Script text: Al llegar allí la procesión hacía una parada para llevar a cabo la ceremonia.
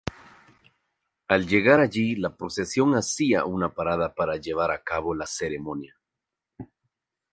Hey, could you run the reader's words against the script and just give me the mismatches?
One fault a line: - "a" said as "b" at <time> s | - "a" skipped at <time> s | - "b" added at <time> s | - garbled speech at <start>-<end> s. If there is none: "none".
none